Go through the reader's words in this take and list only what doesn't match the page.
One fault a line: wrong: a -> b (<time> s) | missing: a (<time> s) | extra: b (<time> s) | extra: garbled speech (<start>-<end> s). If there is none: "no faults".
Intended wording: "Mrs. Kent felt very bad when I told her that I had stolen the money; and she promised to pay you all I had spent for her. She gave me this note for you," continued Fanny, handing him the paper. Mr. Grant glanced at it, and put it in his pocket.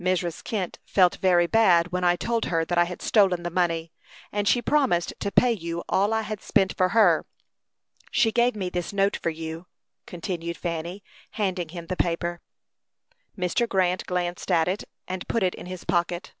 no faults